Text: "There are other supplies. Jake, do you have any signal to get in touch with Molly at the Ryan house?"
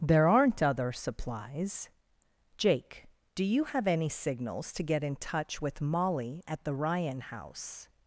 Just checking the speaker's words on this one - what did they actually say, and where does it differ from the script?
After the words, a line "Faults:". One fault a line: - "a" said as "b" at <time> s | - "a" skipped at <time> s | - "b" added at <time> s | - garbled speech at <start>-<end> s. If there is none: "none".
"There aren't other supplies. Jake, do you have any signals to get in touch with Molly at the Ryan house?"
Faults:
- "are" said as "aren't" at 0.3 s
- "signal" said as "signals" at 4.1 s